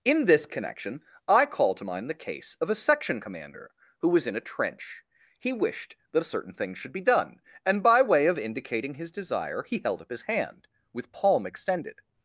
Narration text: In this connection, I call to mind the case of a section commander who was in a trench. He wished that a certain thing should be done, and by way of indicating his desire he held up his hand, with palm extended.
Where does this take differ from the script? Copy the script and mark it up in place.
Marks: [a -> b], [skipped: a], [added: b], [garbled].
In this connection, I call to mind the case of a section commander who was in a trench. He wished that a certain thing should be done, and by way of indicating his desire he held up his hand, with palm extended.